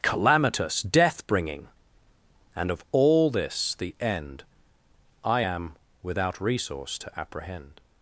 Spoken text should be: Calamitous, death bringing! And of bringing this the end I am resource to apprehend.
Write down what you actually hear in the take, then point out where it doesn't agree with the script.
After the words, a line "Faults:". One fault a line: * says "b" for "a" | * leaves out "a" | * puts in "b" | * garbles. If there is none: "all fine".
Calamitous, death bringing! And of all this the end I am without resource to apprehend.
Faults:
* says "all" for "bringing"
* puts in "without"